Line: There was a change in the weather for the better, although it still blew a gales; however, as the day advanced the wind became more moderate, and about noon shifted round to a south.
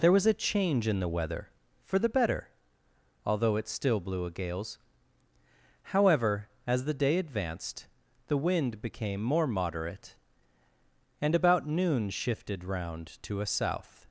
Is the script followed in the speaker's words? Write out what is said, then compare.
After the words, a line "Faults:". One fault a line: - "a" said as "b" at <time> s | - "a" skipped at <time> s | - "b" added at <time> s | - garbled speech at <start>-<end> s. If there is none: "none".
There was a change in the weather for the better, although it still blew a gales; however, as the day advanced the wind became more moderate, and about noon shifted round to a south.
Faults:
none